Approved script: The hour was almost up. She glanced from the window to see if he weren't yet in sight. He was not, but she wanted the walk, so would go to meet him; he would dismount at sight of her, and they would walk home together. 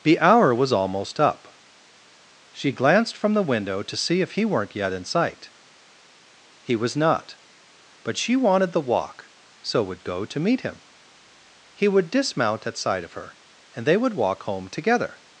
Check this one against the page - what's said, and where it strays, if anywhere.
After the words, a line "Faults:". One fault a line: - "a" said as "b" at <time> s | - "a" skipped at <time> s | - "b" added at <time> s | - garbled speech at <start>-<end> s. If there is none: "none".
The hour was almost up. She glanced from the window to see if he weren't yet in sight. He was not, but she wanted the walk, so would go to meet him; he would dismount at sight of her, and they would walk home together.
Faults:
none